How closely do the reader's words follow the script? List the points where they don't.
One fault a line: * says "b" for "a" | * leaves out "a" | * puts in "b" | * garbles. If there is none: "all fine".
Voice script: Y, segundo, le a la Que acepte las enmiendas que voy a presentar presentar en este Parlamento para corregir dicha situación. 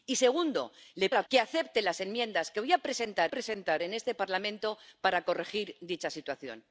all fine